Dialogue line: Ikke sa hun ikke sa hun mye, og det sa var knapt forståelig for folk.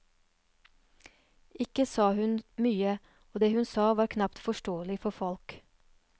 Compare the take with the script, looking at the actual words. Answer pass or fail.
fail